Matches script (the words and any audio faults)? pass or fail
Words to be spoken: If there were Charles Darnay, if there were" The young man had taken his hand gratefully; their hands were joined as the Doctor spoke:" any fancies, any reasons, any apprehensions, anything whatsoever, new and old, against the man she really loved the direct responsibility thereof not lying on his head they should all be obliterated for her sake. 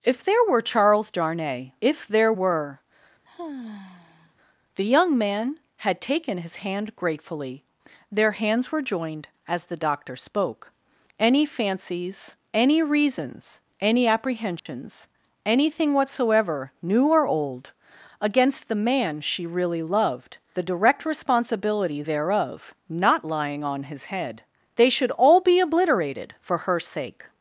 fail